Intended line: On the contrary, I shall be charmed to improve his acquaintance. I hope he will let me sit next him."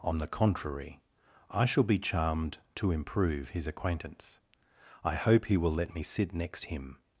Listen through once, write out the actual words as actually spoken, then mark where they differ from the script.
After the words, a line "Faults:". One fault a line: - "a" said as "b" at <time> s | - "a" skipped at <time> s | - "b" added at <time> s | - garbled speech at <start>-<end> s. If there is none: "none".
On the contrary, I shall be charmed to improve his acquaintance. I hope he will let me sit next him."
Faults:
none